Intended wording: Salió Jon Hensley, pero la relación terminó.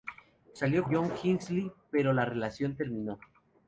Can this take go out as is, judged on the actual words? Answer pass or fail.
pass